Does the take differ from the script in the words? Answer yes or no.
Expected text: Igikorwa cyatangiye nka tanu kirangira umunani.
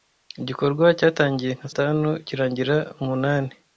no